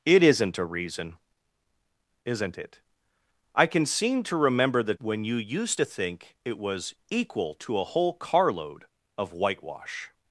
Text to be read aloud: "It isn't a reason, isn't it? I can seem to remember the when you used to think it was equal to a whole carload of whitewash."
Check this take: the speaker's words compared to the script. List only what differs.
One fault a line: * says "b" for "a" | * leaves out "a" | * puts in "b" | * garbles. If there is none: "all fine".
all fine